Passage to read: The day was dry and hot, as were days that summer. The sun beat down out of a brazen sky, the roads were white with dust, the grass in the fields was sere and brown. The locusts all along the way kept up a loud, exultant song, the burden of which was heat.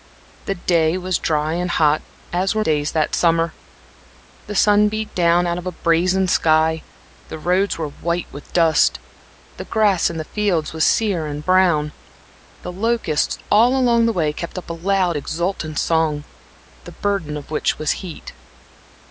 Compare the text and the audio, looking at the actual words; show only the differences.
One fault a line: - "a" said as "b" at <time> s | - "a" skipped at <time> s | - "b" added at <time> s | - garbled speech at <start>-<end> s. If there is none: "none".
none